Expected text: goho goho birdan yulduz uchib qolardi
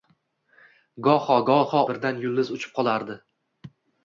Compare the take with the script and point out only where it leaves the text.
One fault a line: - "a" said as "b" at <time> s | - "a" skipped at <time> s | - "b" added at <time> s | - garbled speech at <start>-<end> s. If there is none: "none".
none